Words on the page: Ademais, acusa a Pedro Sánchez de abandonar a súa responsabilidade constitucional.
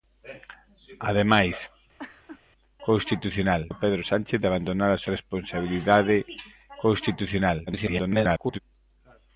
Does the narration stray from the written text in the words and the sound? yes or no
yes